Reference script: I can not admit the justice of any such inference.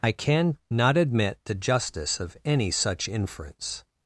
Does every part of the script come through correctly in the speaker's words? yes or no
yes